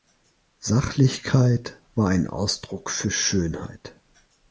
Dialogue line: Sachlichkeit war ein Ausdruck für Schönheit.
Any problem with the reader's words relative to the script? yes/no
no